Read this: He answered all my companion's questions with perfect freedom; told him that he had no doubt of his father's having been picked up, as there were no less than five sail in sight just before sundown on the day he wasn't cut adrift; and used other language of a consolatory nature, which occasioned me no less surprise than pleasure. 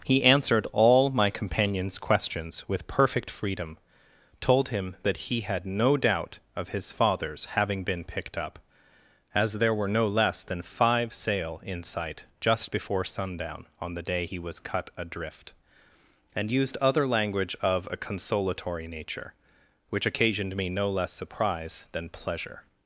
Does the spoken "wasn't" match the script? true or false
false